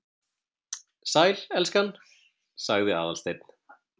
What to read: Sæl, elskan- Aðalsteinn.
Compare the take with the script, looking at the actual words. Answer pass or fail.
fail